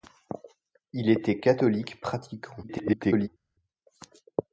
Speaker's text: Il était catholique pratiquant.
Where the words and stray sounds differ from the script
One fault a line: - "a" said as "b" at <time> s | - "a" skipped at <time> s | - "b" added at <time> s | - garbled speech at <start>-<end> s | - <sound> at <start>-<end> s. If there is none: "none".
- garbled speech at 2.6-3.3 s